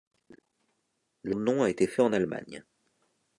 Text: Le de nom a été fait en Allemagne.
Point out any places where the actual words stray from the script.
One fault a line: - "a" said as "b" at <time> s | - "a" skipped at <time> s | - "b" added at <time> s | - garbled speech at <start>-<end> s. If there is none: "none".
none